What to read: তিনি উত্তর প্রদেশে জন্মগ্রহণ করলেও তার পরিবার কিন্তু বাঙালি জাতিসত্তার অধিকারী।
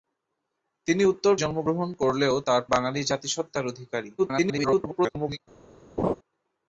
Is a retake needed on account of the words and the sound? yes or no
yes